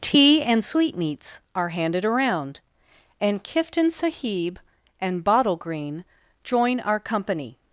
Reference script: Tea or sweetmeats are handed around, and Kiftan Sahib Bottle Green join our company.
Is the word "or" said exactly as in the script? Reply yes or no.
no